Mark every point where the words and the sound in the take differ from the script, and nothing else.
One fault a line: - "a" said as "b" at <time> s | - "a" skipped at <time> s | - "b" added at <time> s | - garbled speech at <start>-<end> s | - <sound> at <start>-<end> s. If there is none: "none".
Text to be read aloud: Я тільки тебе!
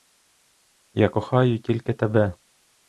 - "кохаю" added at 1.1 s